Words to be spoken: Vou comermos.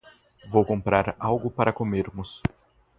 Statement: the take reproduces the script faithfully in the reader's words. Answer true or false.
false